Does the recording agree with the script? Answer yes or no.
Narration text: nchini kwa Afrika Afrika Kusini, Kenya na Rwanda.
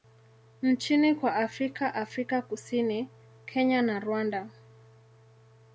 yes